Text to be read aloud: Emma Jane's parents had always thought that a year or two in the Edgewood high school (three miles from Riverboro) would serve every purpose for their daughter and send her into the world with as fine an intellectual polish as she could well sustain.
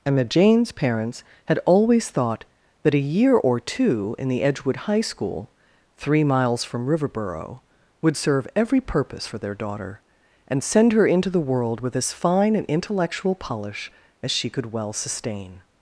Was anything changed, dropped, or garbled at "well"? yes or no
no